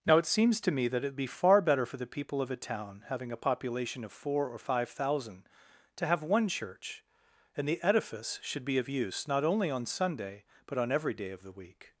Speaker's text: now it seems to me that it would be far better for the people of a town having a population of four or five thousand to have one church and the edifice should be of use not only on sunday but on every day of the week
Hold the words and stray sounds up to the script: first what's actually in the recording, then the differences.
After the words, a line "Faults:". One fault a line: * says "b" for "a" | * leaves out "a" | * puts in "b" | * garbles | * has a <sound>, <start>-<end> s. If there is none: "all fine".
now it seems to me that it would be far better for the people of a town having a population of four or five thousand to have one church and the edifice should be of use not only on sunday but on every day of the week
Faults:
all fine